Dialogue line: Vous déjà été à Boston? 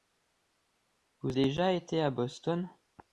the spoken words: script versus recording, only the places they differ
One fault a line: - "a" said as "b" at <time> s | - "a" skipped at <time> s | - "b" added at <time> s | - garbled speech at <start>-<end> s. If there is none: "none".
none